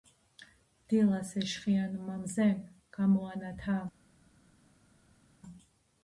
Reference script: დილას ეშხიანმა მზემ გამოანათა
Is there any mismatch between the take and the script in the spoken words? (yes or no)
no